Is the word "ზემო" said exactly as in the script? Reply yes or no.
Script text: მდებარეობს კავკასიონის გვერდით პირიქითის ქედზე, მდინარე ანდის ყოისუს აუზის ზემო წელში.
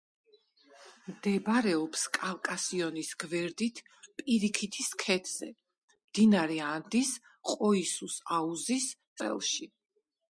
no